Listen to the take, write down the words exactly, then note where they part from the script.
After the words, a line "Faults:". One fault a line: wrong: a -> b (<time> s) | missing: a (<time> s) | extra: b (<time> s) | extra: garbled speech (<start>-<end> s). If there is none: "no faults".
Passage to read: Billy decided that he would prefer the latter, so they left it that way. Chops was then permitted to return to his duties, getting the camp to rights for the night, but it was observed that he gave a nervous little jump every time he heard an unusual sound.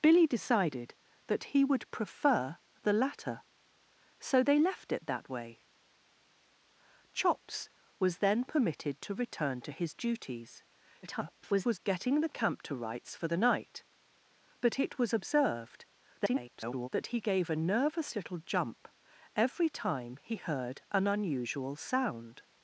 Billy decided that he would prefer the latter, so they left it that way. Chops was then permitted to return to his duties, [garbled] getting the camp to rights for the night, but it was observed [garbled] that he gave a nervous little jump every time he heard an unusual sound.
Faults:
extra: garbled speech (11.0-11.8 s)
extra: garbled speech (16.2-16.9 s)